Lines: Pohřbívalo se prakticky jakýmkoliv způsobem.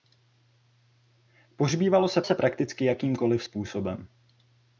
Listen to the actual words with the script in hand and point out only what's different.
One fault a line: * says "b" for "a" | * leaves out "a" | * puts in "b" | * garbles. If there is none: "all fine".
* puts in "se"